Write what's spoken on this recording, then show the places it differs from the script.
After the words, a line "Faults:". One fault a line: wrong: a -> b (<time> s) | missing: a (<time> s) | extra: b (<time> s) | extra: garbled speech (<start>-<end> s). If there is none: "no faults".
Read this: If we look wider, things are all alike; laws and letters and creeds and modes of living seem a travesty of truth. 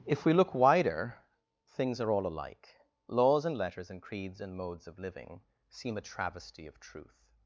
If we look wider, things are all alike; laws and letters and creeds and modes of living seem a travesty of truth.
Faults:
no faults